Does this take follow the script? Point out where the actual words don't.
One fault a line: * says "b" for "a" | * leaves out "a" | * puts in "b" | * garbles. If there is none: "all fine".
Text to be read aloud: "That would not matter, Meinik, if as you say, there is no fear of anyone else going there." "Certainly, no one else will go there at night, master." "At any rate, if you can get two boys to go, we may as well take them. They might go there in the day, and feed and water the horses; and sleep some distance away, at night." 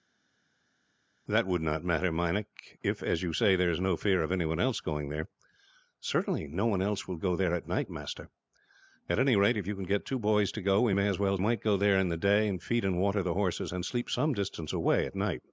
* leaves out "take them They"